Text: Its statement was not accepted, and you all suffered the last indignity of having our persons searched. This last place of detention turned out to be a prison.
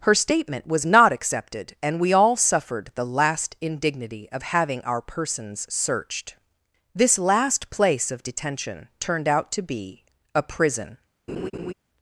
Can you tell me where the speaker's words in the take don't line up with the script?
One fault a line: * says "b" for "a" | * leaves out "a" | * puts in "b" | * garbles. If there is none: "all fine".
* says "Her" for "Its"
* says "we" for "you"